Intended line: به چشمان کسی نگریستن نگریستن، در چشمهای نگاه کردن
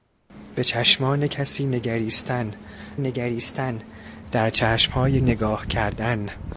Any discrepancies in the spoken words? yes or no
no